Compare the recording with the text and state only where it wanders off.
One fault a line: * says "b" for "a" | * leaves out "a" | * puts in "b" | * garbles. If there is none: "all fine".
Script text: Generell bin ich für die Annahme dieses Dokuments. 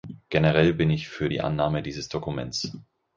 all fine